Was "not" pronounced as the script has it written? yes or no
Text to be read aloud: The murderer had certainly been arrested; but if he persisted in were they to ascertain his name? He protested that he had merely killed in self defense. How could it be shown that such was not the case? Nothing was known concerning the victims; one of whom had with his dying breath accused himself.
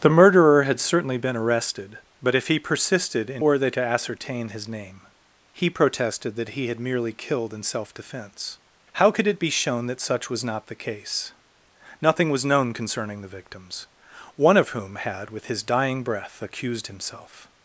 yes